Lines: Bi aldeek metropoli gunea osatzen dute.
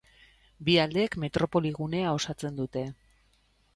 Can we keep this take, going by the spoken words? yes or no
yes